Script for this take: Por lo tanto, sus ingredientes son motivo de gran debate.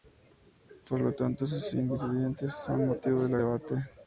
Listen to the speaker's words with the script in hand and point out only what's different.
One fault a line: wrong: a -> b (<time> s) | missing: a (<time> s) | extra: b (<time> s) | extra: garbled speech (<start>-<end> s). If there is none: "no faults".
missing: gran (3.4 s)